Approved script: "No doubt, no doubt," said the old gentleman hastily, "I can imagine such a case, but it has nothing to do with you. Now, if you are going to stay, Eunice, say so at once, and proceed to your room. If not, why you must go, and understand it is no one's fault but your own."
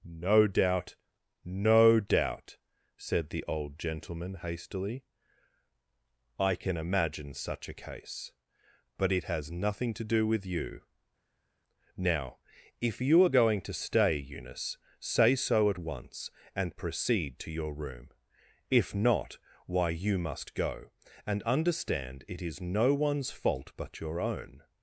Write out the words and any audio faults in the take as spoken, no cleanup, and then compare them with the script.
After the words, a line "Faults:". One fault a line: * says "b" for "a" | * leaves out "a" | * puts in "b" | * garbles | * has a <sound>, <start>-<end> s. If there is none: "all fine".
"No doubt, no doubt," said the old gentleman hastily, "I can imagine such a case, but it has nothing to do with you. Now, if you are going to stay, Eunice, say so at once, and proceed to your room. If not, why you must go, and understand it is no one's fault but your own."
Faults:
all fine